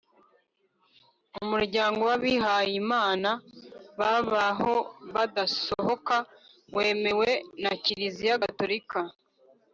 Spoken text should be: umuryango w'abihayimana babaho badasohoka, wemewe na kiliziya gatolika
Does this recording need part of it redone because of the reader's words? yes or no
no